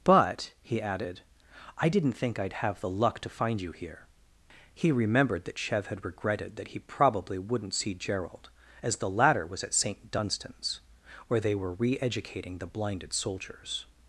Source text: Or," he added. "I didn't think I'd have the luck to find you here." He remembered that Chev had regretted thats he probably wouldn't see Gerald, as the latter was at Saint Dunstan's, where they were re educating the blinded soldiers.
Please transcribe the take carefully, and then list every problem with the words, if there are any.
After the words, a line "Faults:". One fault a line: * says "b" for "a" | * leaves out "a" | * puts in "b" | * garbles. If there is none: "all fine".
But," he added. "I didn't think I'd have the luck to find you here." He remembered that Chev had regretted that he probably wouldn't see Gerald, as the latter was at Saint Dunstan's, where they were re educating the blinded soldiers.
Faults:
* says "But" for "Or"
* says "that" for "thats"